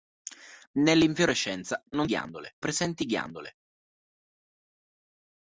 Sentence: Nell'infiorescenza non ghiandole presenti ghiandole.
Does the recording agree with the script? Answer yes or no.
yes